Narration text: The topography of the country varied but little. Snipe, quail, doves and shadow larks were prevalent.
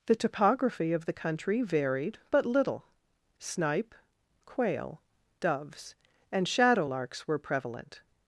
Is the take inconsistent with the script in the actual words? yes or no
no